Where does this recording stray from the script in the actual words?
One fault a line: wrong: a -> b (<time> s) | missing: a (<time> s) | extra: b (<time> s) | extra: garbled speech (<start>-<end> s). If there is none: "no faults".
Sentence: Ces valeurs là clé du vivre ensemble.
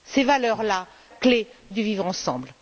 no faults